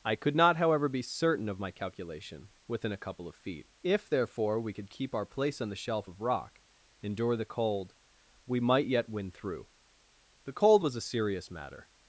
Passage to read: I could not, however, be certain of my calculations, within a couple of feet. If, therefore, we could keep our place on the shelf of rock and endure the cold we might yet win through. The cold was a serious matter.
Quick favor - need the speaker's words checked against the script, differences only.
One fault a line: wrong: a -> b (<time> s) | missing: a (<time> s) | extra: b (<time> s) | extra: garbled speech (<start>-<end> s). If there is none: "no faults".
wrong: calculations -> calculation (1.7 s)
missing: and (6.6 s)